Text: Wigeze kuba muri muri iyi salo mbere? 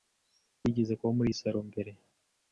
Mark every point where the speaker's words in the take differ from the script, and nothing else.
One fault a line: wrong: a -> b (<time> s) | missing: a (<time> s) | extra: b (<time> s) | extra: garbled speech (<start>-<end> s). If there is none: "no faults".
missing: muri (1.3 s)